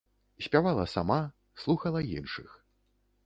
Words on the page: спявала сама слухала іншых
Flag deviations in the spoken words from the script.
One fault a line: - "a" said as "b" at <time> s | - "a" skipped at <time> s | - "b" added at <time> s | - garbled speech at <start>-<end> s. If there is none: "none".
none